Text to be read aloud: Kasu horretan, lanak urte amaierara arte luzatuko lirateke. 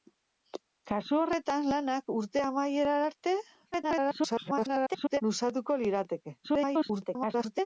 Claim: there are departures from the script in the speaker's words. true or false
true